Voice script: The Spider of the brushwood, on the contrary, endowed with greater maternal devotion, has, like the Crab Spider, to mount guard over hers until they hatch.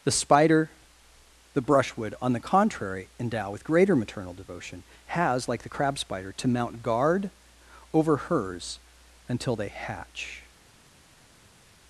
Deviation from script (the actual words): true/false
true